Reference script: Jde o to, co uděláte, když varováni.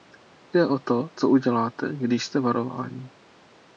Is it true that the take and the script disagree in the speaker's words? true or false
true